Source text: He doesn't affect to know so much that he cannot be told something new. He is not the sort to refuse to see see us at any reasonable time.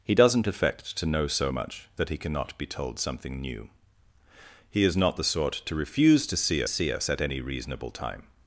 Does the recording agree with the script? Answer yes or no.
yes